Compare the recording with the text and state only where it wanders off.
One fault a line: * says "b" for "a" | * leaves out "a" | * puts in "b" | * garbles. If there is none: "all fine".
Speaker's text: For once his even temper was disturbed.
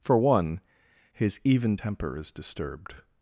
* says "one" for "once"
* says "is" for "was"